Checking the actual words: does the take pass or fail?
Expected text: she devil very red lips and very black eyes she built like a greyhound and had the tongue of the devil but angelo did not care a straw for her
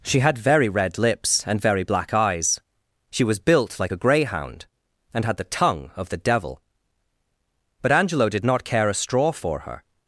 fail